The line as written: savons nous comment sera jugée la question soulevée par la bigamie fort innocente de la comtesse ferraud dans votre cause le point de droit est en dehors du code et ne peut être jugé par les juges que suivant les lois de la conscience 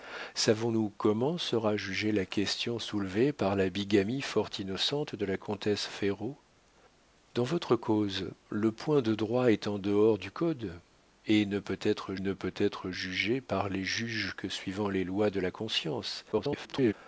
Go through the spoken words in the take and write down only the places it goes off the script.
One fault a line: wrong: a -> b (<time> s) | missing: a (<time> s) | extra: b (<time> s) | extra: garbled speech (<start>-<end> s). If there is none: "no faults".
extra: ne peut être (12.2 s)
extra: garbled speech (16.3-16.9 s)